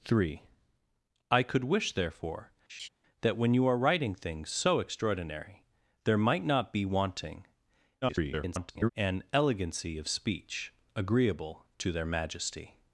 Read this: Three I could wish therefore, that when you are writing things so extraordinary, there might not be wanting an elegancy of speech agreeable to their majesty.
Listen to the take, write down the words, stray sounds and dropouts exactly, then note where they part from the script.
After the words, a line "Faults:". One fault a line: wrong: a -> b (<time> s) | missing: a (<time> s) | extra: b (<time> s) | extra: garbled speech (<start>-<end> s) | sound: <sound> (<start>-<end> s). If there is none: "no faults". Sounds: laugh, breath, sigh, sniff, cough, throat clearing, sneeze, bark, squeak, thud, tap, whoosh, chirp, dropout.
Three I could wish therefore, that when you are writing things so extraordinary, there might not be wanting [garbled] an elegancy of speech agreeable to their majesty.
Faults:
sound: laugh (2.7-2.9 s)
extra: garbled speech (8.0-8.9 s)